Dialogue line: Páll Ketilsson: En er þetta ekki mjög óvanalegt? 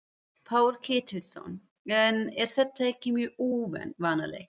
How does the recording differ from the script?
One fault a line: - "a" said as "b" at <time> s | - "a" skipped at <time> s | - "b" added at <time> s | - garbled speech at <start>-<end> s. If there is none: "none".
none